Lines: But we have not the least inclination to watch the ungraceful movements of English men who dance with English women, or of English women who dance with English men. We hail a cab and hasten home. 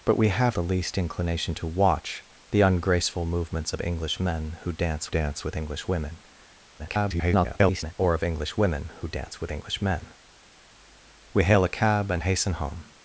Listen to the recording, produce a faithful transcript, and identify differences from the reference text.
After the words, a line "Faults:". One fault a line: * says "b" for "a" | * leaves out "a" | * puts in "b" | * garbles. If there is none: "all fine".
But we have the least inclination to watch the ungraceful movements of English men who dance dance with English women, [garbled] or of English women who dance with English men. We hail a cab and hasten home.
Faults:
* leaves out "not"
* puts in "dance"
* garbles